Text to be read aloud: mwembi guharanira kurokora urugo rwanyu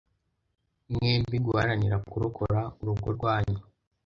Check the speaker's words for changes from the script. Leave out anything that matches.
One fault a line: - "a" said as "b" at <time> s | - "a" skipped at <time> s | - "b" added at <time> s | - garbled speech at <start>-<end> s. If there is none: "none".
none